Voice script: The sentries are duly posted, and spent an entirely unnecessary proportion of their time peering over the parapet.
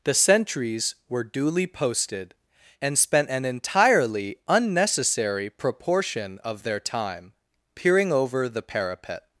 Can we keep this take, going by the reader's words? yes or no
no